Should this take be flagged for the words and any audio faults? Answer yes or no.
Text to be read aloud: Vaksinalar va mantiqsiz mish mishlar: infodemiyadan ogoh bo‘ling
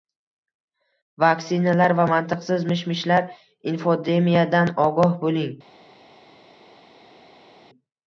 no